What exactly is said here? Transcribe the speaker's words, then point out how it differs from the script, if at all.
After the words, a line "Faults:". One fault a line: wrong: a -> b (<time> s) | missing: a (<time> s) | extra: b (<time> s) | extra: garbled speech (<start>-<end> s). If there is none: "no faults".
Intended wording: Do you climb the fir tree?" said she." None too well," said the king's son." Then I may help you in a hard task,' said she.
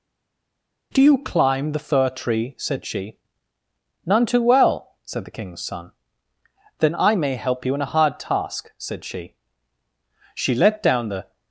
Do you climb the fir tree?" said she." None too well," said the king's son." Then I may help you in a hard task,' said she. She let down the
Faults:
extra: She let down the (10.3 s)